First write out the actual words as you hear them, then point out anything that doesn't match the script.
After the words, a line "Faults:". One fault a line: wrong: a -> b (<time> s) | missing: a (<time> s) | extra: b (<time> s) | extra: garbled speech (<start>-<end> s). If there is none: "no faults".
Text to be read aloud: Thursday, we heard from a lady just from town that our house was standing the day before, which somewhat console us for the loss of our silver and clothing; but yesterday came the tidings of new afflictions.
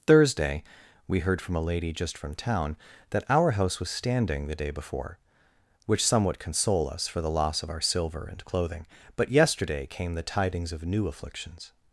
Thursday, we heard from a lady just from town that our house was standing the day before, which somewhat console us for the loss of our silver and clothing; but yesterday came the tidings of new afflictions.
Faults:
no faults